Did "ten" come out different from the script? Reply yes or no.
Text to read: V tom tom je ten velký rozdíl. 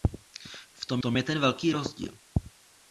no